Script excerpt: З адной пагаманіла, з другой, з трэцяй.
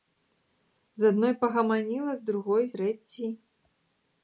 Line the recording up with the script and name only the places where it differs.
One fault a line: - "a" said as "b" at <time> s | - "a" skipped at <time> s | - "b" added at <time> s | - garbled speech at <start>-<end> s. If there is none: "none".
- "з" skipped at 2.7 s